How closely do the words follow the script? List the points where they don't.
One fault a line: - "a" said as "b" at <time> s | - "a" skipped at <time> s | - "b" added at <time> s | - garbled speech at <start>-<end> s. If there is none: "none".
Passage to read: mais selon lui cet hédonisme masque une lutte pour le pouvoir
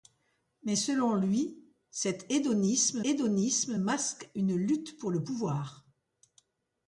- "hédonisme" added at 3.1 s